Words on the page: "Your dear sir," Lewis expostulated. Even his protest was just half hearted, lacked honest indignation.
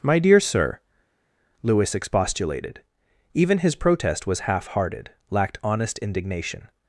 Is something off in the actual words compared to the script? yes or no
yes